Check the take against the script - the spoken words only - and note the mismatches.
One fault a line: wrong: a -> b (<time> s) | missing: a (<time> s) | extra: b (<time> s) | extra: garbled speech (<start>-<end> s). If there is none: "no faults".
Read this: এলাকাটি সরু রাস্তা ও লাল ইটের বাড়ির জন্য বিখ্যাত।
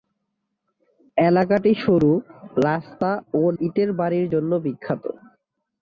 missing: লাল (3.5 s)